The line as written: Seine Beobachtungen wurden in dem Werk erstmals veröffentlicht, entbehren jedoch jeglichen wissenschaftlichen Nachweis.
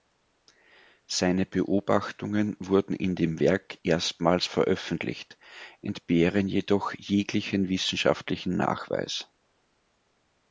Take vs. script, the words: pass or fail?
pass